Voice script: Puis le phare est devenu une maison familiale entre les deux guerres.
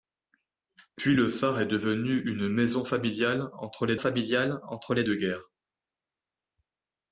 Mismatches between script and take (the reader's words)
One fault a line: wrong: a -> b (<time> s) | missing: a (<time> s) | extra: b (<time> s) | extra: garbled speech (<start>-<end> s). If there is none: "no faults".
extra: familiale entre les (4.0 s)